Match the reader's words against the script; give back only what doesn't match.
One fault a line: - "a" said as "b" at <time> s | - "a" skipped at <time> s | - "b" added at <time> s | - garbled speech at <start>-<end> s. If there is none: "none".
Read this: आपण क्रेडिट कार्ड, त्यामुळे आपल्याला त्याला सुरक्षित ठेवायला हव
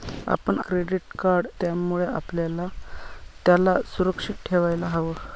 none